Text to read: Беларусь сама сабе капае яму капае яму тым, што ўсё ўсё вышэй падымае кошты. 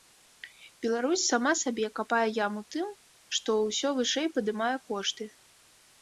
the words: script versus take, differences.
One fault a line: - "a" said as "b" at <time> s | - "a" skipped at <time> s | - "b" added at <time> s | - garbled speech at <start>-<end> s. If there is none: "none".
- "капае яму" skipped at 2.6 s
- "ўсё" skipped at 3.9 s